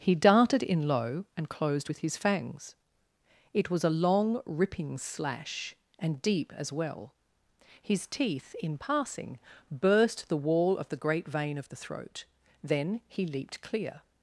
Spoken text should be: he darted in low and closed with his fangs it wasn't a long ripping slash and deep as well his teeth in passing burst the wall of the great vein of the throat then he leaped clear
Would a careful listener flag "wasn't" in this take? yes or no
yes